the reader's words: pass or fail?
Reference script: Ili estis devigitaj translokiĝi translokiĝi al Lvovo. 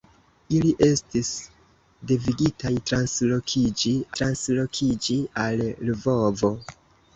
pass